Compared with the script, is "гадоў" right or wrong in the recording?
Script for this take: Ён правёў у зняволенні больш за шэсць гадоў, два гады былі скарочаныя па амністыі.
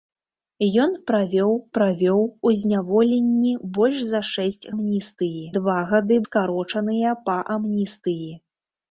wrong